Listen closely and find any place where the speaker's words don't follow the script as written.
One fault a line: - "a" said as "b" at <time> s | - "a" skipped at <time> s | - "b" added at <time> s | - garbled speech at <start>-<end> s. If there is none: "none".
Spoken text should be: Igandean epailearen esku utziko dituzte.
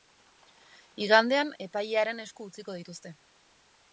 none